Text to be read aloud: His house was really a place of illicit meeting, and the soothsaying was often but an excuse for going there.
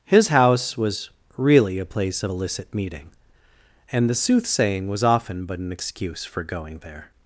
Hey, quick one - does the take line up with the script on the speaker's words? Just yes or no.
yes